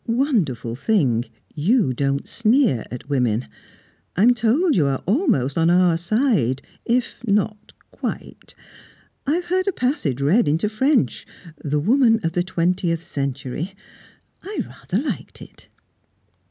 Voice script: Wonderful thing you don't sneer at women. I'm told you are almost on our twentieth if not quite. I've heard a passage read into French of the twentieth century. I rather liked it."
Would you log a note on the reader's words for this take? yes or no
yes